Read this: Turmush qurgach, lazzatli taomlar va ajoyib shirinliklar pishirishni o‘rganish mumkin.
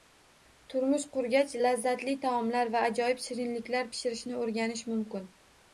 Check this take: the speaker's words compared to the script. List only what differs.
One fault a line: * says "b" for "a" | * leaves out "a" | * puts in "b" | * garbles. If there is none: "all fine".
all fine